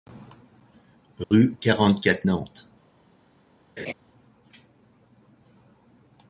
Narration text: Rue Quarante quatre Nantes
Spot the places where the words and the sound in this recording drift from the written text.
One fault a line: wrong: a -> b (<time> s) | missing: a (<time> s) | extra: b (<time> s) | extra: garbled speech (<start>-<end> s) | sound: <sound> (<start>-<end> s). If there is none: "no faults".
sound: dropout (1.2-1.3 s)
sound: laugh (3.8-3.9 s)